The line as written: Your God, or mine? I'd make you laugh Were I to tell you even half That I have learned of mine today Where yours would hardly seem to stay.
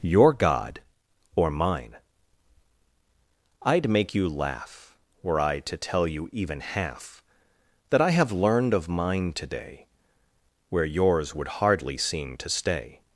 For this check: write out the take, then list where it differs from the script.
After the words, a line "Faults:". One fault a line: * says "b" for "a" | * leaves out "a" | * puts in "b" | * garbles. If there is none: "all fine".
Your God, or mine? I'd make you laugh Were I to tell you even half That I have learned of mine today Where yours would hardly seem to stay.
Faults:
all fine